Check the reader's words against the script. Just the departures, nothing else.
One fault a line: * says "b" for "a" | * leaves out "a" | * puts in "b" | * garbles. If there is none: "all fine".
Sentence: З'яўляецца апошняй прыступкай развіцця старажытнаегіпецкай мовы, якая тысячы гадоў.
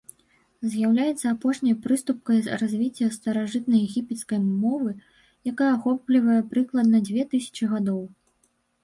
* puts in "ахоплівае прыкладна дзве"